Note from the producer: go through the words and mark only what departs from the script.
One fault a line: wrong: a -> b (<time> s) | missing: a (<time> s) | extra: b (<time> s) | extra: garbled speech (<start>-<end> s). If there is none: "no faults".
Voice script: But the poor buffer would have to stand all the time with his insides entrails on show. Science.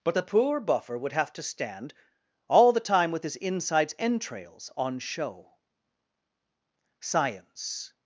no faults